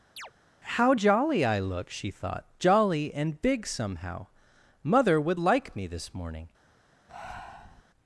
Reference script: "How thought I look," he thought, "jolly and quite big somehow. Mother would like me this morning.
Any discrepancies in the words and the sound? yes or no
yes